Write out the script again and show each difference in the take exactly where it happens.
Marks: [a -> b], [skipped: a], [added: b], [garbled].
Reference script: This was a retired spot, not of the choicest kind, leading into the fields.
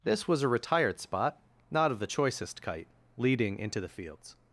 This was a retired spot, not of the choicest [kind, -> kite] leading into the fields.